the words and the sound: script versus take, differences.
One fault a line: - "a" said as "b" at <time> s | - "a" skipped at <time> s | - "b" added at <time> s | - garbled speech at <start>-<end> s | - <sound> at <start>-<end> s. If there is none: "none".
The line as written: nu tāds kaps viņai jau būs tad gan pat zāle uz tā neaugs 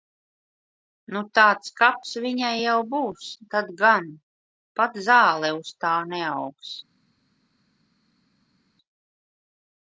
none